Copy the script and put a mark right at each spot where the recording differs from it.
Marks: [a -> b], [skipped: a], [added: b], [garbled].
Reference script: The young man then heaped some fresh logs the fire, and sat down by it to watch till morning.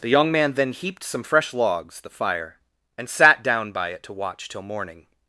The young man then heaped some fresh logs the fire, and sat down by it to watch till morning.